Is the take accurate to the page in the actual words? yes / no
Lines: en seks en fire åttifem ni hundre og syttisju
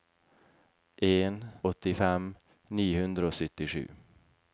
no